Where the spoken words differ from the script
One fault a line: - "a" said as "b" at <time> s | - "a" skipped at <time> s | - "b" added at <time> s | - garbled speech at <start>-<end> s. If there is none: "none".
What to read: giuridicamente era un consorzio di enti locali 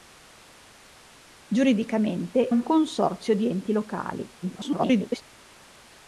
- "era" skipped at 2.5 s
- garbled speech at 4.4-5.2 s